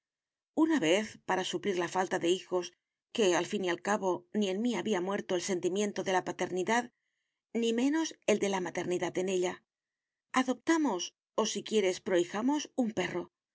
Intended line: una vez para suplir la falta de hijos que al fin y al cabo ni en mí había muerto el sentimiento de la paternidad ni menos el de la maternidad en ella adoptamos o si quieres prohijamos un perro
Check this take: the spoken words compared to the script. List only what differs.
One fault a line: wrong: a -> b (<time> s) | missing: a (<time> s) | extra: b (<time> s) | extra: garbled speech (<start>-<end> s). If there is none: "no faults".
no faults